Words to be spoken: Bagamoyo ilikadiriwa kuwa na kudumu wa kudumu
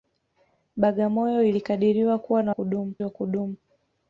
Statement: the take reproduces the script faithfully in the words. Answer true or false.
true